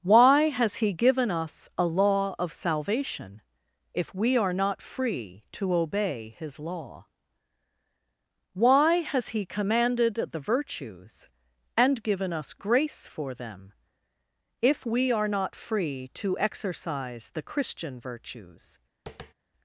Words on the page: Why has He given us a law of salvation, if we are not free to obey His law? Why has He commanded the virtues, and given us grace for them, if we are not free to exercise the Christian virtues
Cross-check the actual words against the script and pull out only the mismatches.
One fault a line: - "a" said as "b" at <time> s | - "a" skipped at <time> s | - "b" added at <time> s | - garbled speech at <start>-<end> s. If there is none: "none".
none